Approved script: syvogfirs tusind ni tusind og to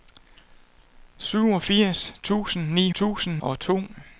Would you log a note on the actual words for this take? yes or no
no